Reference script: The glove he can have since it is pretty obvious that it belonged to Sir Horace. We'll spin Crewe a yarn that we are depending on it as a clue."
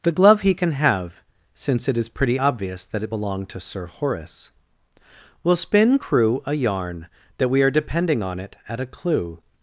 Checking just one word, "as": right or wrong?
wrong